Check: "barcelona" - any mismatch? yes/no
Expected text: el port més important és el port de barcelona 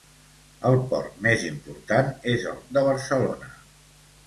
no